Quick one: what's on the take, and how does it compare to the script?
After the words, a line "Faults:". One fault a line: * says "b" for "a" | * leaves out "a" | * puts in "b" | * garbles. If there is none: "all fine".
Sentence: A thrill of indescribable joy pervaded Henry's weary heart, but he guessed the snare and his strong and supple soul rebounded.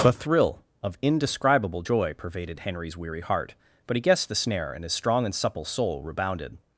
A thrill of indescribable joy pervaded Henry's weary heart, but he guessed the snare and his strong and supple soul rebounded.
Faults:
all fine